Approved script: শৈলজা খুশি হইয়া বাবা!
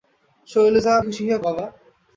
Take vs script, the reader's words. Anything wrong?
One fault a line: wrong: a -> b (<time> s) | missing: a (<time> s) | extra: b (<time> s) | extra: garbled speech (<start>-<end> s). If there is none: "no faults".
no faults